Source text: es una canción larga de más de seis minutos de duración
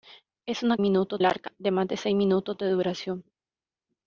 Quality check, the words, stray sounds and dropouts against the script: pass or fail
fail